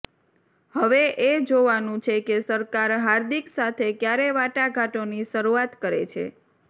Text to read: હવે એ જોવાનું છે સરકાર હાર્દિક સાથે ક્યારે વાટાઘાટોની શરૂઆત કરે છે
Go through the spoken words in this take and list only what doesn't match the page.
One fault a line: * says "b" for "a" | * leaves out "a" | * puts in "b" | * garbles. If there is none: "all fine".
* puts in "કે"